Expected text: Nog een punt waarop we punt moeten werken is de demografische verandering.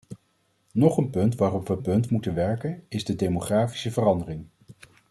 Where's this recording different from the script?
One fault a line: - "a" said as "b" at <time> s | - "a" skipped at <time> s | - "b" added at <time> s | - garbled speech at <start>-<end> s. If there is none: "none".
none